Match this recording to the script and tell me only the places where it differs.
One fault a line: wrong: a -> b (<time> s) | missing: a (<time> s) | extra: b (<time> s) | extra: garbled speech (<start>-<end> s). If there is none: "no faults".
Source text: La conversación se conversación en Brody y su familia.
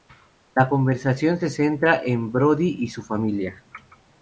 wrong: conversación -> centra (1.5 s)